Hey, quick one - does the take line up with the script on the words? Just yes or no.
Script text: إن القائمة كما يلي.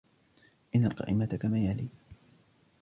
yes